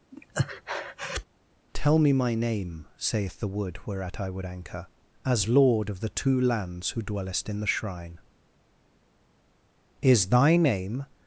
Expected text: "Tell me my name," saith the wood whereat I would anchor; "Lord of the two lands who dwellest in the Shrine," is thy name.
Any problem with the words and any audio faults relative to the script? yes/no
yes